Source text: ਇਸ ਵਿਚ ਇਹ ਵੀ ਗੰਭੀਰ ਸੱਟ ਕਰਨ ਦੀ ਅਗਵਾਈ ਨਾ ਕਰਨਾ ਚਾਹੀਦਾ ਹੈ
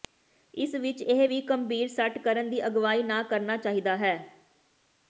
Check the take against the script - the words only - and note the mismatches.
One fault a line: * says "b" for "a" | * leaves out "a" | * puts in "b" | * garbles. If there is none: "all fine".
all fine